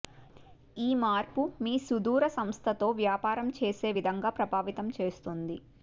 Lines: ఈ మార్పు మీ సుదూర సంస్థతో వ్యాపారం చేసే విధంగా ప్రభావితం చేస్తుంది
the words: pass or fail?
pass